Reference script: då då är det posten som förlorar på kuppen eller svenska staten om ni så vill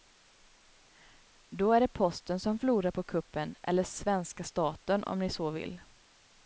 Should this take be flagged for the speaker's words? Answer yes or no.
yes